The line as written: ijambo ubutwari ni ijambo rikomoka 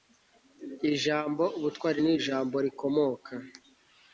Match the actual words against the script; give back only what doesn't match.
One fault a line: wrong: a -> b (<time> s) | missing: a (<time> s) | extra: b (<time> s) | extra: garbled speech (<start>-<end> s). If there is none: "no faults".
no faults